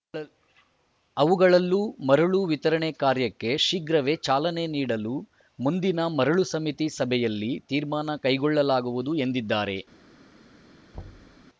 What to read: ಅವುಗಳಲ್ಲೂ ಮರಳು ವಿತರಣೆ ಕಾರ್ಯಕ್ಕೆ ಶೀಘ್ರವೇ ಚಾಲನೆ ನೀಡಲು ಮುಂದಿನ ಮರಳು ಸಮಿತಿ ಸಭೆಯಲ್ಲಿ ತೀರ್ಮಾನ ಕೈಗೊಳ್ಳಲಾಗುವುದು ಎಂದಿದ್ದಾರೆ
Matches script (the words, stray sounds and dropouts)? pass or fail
fail